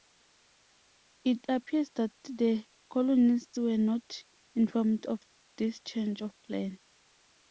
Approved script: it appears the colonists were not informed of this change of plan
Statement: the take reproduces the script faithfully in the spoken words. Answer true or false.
false